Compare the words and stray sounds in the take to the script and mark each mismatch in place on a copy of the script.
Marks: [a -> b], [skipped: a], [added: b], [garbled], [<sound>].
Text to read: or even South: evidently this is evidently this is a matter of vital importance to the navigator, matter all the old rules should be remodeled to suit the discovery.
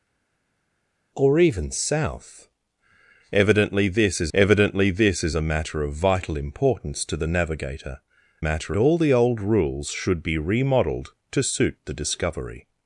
or even South: evidently this is evidently this is a matter of vital importance to the navigator, matter all the old rules should be remodeled to suit the discovery.